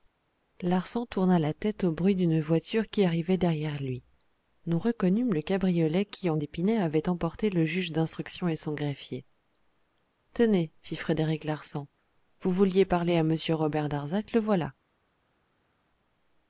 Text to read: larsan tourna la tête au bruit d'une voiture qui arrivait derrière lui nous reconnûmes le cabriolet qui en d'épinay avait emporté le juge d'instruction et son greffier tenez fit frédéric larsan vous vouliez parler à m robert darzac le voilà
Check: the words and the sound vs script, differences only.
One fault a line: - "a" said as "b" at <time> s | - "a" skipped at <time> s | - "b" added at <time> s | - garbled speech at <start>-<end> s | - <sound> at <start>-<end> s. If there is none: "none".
none